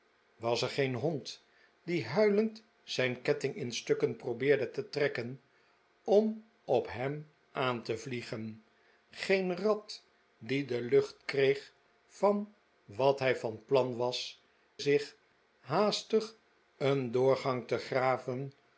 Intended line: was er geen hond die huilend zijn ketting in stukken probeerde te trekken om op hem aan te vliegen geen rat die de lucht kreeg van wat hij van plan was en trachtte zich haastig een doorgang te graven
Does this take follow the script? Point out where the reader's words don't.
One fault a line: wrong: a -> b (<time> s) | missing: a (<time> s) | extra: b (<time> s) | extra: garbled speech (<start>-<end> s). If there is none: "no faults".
missing: en trachtte (14.4 s)